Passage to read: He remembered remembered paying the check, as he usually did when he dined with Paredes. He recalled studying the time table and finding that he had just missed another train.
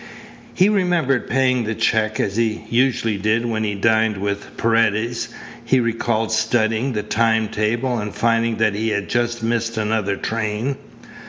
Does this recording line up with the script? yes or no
no